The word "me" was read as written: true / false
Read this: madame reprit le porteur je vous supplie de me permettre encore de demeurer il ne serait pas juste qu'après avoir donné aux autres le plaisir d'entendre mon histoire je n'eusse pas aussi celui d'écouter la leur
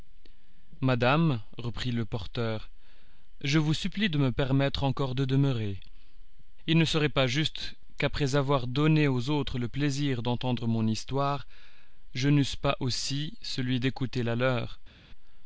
true